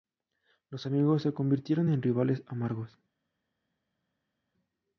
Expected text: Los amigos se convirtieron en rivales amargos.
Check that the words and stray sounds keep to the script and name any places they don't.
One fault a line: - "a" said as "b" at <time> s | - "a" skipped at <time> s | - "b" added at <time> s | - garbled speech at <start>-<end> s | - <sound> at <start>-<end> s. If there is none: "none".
none